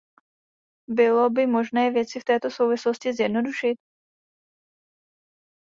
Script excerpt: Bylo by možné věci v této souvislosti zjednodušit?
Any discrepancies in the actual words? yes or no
no